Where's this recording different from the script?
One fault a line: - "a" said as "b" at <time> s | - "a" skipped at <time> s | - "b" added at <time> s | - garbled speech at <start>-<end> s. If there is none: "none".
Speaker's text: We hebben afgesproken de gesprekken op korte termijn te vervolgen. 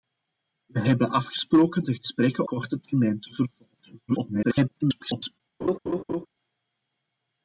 - "op" skipped at 2.5 s
- garbled speech at 4.1-5.4 s